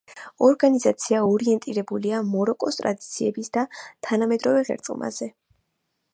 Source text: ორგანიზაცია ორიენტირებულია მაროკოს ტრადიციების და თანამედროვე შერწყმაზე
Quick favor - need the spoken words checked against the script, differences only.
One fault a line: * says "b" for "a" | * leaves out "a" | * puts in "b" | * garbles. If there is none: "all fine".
all fine